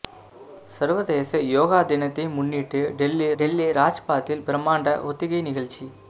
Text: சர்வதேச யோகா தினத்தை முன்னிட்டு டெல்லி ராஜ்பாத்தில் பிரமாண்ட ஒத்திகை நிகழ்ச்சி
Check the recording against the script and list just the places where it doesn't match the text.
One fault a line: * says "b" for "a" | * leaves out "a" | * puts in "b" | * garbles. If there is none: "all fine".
* puts in "டெல்லி"